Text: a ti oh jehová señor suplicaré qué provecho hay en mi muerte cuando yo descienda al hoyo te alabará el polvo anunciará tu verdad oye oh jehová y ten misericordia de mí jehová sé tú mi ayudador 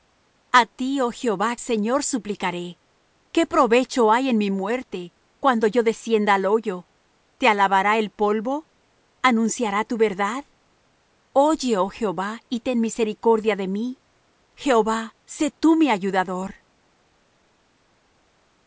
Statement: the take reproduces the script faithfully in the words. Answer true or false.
true